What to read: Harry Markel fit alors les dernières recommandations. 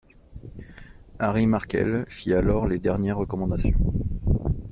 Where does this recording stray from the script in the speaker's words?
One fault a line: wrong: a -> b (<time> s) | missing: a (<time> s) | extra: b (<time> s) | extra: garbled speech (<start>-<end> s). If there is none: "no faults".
no faults